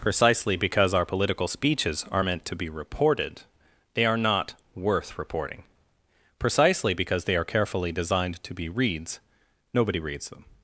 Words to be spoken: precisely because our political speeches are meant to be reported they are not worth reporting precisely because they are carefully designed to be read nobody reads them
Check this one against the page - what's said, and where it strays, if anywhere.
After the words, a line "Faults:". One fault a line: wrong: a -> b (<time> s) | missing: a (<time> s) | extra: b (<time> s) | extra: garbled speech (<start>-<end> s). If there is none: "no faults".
precisely because our political speeches are meant to be reported they are not worth reporting precisely because they are carefully designed to be reads nobody reads them
Faults:
wrong: read -> reads (8.7 s)